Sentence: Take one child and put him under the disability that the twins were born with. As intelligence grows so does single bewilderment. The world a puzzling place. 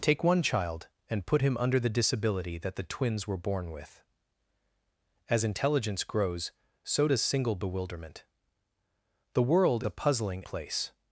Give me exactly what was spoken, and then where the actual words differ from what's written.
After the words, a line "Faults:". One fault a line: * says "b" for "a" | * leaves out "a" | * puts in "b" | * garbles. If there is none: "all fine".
Take one child and put him under the disability that the twins were born with. As intelligence grows so does single bewilderment. The world a puzzling place.
Faults:
all fine